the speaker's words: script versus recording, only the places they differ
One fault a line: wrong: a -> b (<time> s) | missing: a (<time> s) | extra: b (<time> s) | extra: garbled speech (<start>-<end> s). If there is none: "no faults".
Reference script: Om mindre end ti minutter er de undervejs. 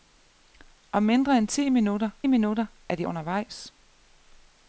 extra: minutter (2.3 s)